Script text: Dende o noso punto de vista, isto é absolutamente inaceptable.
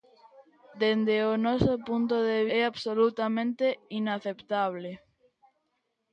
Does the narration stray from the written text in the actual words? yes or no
yes